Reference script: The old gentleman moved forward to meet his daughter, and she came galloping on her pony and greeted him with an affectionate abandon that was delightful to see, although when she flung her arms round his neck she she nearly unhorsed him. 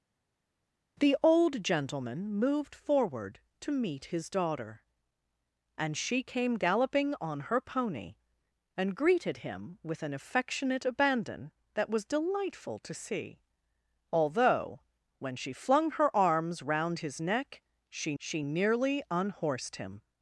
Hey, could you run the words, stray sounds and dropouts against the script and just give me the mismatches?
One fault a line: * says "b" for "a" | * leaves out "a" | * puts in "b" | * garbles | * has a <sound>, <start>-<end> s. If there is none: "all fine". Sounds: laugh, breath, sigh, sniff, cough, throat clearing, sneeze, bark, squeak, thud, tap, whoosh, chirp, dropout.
all fine